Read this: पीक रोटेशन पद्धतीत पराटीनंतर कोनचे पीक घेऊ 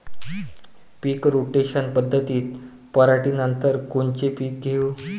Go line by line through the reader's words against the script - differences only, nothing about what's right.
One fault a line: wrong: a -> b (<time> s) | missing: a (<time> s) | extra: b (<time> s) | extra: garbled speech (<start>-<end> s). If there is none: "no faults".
no faults